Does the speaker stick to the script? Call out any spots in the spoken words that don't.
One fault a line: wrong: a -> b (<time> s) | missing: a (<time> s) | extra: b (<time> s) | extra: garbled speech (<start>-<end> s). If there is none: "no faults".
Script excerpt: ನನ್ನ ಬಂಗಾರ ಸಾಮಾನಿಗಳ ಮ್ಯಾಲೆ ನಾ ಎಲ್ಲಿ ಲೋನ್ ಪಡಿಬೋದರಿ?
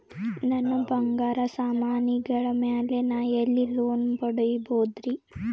no faults